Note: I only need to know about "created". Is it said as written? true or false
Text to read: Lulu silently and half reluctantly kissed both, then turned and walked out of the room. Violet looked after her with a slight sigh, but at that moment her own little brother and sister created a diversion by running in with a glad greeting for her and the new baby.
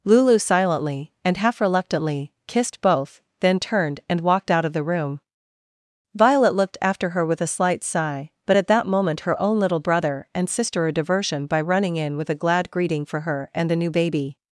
false